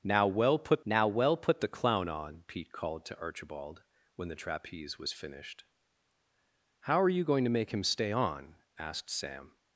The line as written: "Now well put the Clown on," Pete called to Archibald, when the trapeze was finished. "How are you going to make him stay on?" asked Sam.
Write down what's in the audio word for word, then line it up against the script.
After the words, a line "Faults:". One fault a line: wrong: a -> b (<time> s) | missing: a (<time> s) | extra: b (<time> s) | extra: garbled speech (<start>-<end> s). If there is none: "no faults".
"Now well put now well put the Clown on," Pete called to Archibald, when the trapeze was finished. "How are you going to make him stay on?" asked Sam.
Faults:
extra: now well put (0.8 s)